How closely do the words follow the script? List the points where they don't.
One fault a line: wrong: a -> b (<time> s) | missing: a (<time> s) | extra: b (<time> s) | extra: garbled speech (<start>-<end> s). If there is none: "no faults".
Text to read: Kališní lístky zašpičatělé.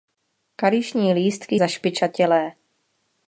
no faults